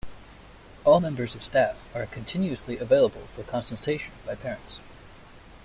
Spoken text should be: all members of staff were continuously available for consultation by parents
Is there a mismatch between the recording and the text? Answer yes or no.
yes